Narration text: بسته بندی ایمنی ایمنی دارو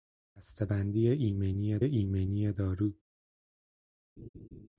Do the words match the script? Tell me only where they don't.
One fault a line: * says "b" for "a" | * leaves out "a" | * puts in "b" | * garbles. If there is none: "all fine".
all fine